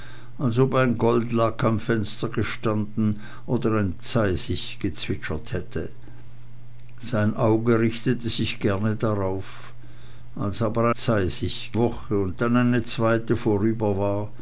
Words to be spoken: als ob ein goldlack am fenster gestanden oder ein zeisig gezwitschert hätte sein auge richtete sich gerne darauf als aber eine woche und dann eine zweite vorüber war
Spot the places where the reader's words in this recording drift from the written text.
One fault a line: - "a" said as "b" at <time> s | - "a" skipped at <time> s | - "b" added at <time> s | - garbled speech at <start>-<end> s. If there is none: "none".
- "eine" said as "zeisig" at 10.9 s